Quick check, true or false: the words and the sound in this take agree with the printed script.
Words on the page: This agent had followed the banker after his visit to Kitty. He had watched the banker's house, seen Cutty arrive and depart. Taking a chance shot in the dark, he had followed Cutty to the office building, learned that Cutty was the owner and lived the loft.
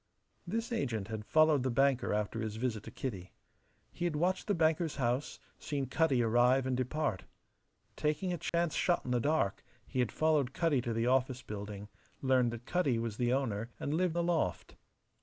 false